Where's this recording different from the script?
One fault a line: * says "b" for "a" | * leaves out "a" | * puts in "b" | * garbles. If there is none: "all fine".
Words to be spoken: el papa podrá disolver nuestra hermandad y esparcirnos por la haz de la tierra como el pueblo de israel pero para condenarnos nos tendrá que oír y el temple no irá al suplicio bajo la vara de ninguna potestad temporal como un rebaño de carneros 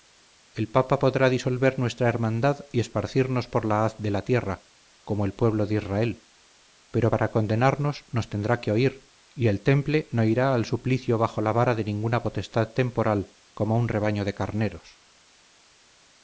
all fine